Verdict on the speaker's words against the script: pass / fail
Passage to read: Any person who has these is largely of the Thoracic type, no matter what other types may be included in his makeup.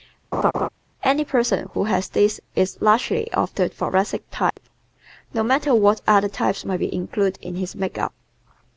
pass